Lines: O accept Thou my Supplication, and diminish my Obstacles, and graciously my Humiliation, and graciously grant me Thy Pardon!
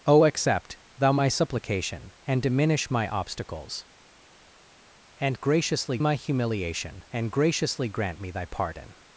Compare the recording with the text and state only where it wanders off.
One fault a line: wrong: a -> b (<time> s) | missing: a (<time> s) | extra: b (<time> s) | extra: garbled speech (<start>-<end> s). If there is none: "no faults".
no faults